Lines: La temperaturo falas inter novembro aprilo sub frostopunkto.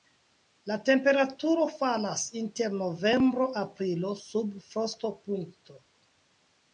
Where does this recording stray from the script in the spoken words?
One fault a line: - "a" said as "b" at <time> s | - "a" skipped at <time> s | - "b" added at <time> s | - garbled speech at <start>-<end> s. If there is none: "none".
none